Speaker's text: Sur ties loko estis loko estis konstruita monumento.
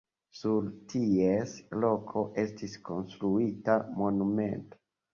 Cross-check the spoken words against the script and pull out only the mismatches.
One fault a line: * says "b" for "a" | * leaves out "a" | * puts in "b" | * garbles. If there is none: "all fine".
* leaves out "loko estis"